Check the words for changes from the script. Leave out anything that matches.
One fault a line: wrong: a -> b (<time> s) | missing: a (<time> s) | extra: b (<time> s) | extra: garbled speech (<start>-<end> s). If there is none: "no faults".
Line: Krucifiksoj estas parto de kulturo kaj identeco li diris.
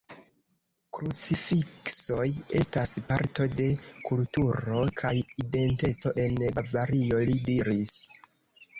extra: en Bavario (6.3 s)